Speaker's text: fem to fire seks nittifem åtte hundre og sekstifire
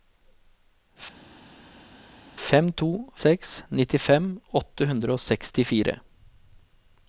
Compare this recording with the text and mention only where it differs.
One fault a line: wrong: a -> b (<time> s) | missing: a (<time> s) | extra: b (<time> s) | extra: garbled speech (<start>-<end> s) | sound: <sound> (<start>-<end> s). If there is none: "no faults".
missing: fire (2.9 s)